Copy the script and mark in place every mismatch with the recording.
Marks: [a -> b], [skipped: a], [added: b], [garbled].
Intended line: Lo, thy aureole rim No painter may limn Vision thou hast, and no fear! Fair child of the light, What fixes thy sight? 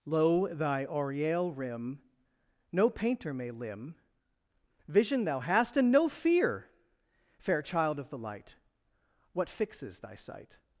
Lo, thy aureole rim No painter may limn Vision thou hast, and no fear! Fair child of the light, What fixes thy sight?